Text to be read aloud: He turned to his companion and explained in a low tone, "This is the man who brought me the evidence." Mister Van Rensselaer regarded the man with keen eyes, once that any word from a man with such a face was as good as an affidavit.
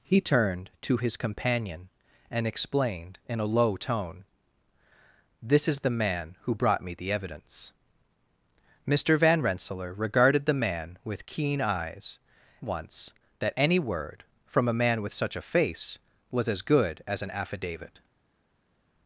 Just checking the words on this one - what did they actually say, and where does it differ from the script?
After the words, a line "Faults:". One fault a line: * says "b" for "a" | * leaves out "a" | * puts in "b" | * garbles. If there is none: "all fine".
He turned to his companion and explained in a low tone, "This is the man who brought me the evidence." Mister Van Rensselaer regarded the man with keen eyes, once that any word from a man with such a face was as good as an affidavit.
Faults:
all fine